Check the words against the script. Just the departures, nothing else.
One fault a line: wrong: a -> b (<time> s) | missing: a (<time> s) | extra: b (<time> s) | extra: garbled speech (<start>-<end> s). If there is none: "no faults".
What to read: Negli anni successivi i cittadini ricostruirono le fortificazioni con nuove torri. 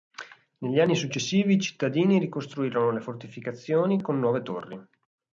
no faults